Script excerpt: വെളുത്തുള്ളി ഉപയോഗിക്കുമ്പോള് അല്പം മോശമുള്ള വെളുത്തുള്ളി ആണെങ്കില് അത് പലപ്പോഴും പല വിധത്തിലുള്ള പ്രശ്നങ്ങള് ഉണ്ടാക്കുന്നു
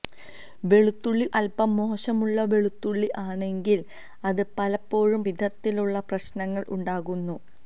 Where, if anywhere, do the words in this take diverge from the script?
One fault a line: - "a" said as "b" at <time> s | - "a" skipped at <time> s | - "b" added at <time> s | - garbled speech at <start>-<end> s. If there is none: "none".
- "ഉപയോഗിക്കുമ്പോള്" skipped at 1.2 s
- "പല" skipped at 5.2 s